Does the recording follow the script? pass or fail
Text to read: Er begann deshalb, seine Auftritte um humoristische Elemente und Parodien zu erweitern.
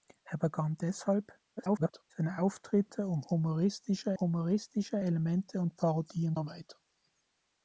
fail